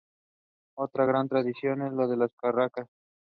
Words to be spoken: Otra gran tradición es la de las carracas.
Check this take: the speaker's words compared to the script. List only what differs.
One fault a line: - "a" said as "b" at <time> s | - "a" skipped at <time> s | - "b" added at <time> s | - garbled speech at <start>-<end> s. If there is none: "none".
none